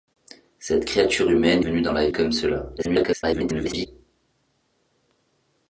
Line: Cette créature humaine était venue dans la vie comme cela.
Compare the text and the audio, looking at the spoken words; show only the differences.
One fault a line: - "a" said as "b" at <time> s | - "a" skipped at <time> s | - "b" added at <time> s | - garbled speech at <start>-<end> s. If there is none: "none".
- "était" skipped at 1.6 s
- "vie" skipped at 2.1 s
- garbled speech at 2.8-3.9 s